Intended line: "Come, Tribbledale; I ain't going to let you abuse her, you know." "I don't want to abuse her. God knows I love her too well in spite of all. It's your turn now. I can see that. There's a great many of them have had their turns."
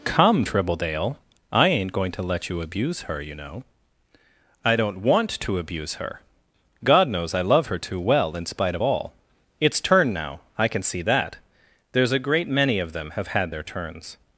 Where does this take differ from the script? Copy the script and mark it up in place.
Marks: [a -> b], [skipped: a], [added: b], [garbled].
"Come, Tribbledale; I ain't going to let you abuse her, you know." "I don't want to abuse her. God knows I love her too well in spite of all. It's [skipped: your] turn now. I can see that. There's a great many of them have had their turns."